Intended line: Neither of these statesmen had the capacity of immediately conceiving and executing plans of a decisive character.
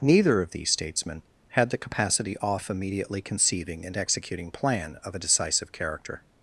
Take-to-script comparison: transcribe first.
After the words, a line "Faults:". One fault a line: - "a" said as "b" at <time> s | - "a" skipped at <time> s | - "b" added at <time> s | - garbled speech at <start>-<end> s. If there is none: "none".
Neither of these statesmen had the capacity off immediately conceiving and executing plan of a decisive character.
Faults:
- "of" said as "off" at 2.4 s
- "plans" said as "plan" at 4.5 s